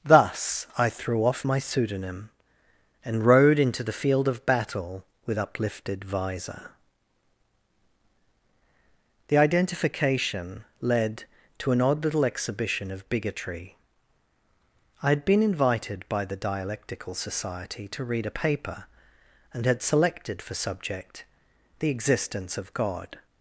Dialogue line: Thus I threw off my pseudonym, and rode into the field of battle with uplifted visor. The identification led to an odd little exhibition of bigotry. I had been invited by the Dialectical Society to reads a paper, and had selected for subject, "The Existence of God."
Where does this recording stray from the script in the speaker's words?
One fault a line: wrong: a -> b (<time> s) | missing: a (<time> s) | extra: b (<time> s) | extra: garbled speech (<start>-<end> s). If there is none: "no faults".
wrong: reads -> read (18.0 s)